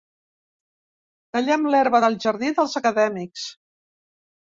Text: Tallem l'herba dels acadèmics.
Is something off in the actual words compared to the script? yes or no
yes